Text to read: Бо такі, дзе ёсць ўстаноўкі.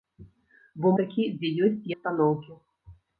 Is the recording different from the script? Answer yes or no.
no